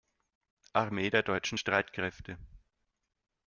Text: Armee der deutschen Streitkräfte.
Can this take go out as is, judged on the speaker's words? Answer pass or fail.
pass